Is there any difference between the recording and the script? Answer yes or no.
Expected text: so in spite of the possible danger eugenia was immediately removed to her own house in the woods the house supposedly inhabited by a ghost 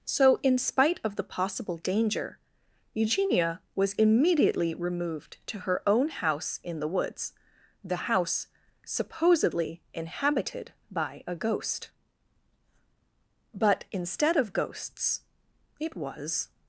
yes